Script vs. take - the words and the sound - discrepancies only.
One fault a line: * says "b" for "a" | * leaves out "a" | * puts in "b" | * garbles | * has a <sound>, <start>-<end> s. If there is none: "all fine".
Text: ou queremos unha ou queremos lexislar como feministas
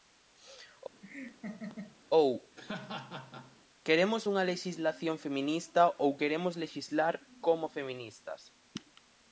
* has a laugh, 1.0-2.0 s
* has a laugh, 2.6-3.6 s
* puts in "lexislación feminista"